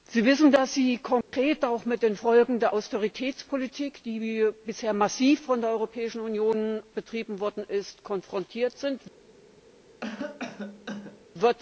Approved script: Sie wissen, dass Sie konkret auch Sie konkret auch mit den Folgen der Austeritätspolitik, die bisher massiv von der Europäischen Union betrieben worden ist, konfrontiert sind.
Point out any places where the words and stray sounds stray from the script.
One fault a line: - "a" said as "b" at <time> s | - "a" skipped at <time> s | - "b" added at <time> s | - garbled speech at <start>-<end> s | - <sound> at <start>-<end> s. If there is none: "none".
- dropout at 1.2-1.3 s
- "Sie konkret auch" skipped at 1.9 s
- cough at 10.0-11.2 s